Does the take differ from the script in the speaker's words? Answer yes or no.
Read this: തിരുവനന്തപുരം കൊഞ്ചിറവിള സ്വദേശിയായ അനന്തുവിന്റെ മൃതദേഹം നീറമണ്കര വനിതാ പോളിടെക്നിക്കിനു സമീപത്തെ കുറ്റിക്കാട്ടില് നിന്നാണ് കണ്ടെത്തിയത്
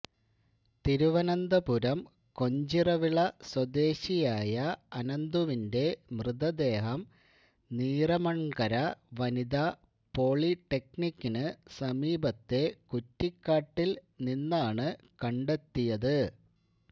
no